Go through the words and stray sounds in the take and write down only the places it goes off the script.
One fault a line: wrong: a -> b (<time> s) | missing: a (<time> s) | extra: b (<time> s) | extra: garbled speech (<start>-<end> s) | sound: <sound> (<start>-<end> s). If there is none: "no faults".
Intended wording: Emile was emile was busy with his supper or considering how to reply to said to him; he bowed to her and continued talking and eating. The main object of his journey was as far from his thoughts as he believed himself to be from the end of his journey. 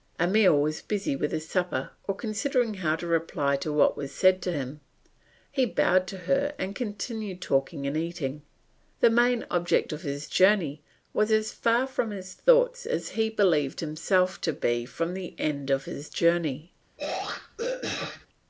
missing: emile was (0.8 s)
extra: what was (3.7 s)
sound: throat clearing (17.0-18.3 s)